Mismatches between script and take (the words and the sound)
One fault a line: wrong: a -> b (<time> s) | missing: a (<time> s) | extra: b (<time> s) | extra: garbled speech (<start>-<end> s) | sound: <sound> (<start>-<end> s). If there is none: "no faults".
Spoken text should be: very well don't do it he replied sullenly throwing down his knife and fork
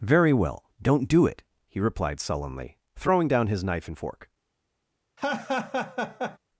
sound: laugh (5.2-6.4 s)